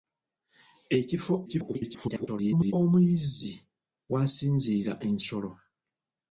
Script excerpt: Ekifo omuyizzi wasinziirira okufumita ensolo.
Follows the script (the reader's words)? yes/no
no